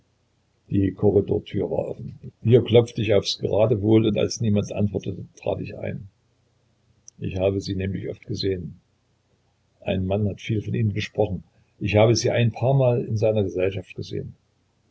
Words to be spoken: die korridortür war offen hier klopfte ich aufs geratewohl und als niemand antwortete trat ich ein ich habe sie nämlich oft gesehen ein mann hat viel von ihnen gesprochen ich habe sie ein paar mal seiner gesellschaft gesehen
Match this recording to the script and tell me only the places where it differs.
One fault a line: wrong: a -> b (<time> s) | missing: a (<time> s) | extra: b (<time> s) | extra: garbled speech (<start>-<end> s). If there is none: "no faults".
extra: in (13.0 s)